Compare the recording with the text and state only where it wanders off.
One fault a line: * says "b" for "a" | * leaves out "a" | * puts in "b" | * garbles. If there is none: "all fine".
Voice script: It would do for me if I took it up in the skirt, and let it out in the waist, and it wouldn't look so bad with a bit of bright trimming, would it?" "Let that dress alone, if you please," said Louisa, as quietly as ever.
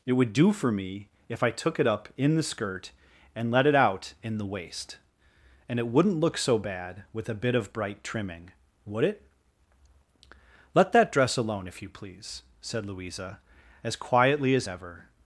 all fine